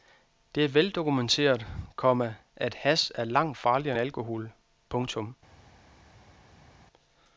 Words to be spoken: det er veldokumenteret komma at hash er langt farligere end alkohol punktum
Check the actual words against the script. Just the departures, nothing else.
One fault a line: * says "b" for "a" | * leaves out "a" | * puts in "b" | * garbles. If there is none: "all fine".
* leaves out "end"